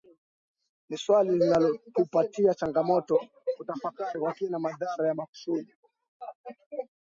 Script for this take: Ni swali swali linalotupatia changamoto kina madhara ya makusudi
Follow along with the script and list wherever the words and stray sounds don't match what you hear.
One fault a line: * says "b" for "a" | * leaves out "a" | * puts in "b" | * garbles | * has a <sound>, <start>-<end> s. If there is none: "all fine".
* leaves out "swali"
* puts in "kutafakari kwa"